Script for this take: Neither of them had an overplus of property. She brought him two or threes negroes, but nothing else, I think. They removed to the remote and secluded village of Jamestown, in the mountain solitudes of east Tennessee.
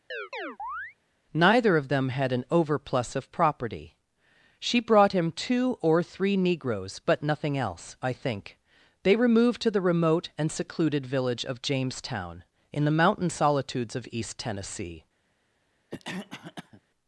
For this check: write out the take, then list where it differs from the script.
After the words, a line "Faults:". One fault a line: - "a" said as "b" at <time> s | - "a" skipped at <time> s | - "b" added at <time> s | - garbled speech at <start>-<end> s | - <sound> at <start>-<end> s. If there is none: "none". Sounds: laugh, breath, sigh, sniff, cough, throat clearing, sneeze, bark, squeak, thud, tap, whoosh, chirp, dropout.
Neither of them had an overplus of property. She brought him two or three negroes, but nothing else, I think. They removed to the remote and secluded village of Jamestown, in the mountain solitudes of east Tennessee.
Faults:
- chirp at 0.1-1.0 s
- "threes" said as "three" at 6.0 s
- cough at 15.9-16.8 s